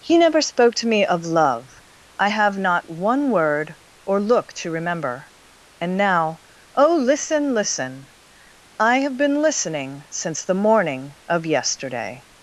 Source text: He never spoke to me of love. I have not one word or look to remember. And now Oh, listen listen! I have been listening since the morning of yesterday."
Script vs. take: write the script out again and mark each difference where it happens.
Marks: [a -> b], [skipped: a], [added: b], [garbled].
He never spoke to me of love. I have not one word or look to remember. And now Oh, listen listen! I have been listening since the morning of yesterday."